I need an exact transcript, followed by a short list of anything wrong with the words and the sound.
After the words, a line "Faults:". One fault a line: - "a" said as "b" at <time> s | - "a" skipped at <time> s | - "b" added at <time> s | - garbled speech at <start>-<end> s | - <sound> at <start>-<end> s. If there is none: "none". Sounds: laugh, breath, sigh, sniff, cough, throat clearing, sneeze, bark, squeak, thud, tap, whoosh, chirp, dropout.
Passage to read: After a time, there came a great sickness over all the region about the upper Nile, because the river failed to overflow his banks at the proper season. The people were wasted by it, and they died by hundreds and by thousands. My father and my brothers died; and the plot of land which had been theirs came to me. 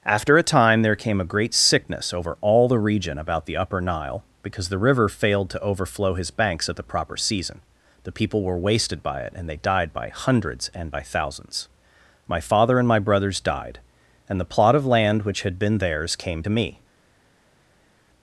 After a time, there came a great sickness over all the region about the upper Nile, because the river failed to overflow his banks at the proper season. The people were wasted by it, and they died by hundreds and by thousands. My father and my brothers died; and the plot of land which had been theirs came to me.
Faults:
none